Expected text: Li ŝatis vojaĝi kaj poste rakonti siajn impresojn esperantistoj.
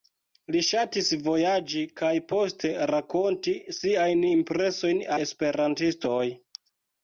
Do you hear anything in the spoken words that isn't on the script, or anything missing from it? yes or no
no